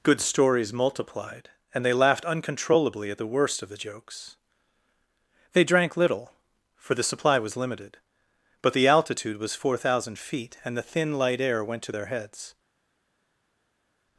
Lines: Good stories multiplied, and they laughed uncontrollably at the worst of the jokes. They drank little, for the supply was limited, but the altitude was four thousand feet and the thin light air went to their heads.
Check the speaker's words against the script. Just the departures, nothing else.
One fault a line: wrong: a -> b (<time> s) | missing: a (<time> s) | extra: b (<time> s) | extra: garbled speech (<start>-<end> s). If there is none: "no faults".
no faults